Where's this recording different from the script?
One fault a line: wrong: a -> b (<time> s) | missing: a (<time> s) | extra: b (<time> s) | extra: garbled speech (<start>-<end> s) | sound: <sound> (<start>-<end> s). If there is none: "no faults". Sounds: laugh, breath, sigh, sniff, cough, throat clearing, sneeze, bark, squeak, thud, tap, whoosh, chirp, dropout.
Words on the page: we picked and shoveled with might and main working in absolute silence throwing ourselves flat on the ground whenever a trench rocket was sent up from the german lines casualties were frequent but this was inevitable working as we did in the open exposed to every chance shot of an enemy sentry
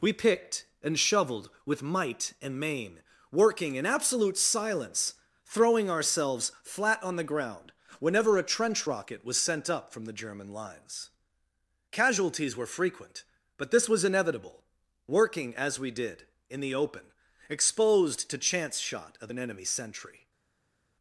missing: every (18.4 s)